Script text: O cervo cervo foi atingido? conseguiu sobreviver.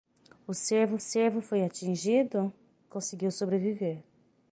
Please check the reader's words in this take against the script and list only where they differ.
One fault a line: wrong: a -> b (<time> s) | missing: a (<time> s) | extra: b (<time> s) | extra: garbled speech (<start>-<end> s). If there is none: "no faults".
no faults